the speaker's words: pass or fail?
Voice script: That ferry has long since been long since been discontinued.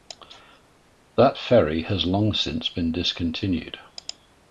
fail